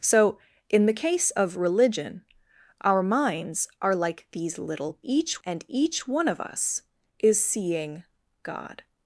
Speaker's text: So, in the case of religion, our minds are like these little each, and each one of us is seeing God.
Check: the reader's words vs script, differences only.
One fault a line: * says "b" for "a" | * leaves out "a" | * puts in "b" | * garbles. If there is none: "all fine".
all fine